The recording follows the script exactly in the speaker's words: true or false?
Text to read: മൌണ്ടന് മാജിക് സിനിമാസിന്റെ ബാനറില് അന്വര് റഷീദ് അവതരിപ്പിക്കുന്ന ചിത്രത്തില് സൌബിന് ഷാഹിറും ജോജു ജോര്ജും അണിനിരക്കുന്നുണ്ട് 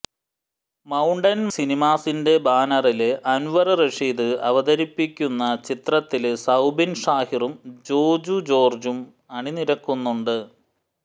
false